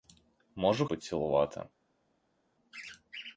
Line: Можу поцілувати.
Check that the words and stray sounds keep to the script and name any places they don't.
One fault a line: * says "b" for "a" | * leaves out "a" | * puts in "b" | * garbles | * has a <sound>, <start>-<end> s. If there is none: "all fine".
all fine